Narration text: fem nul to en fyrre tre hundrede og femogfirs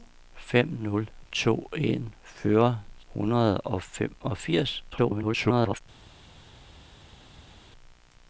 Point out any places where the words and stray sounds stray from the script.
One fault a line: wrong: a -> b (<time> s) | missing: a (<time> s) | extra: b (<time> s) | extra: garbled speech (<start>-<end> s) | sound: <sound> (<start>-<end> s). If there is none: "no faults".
missing: tre (2.8 s)
extra: garbled speech (4.9-5.8 s)